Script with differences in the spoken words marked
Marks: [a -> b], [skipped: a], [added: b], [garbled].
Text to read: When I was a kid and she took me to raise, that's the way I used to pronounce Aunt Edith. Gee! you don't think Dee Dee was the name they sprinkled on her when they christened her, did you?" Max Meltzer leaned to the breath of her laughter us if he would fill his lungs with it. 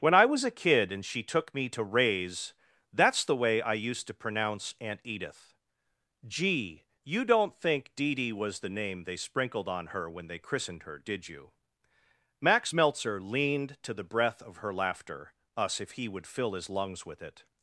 When I was a kid and she took me to raise, that's the way I used to pronounce Aunt Edith. Gee! you don't think Dee Dee was the name they sprinkled on her when they christened her, did you?" Max Meltzer leaned to the breath of her laughter us if he would fill his lungs with it.